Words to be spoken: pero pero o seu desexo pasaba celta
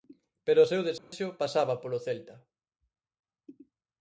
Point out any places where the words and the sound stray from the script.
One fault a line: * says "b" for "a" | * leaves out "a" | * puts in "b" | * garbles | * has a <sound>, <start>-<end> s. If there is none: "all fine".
* leaves out "pero"
* has a dropout, 1.0-1.1 s
* puts in "polo"